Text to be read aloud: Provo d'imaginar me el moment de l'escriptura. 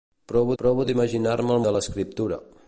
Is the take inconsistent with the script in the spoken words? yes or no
yes